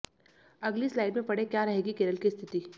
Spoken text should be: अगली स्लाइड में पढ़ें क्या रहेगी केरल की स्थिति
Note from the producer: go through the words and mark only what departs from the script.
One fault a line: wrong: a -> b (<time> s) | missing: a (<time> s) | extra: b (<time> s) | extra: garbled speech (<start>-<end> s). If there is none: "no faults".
no faults